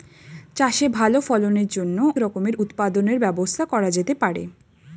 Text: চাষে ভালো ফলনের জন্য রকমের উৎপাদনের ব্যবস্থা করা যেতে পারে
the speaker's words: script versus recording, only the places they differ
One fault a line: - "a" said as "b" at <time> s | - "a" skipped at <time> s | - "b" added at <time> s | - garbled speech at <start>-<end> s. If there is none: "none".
none